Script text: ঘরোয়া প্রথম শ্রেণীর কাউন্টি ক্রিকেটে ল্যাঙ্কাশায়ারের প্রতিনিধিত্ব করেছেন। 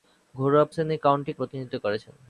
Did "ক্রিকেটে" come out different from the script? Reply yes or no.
yes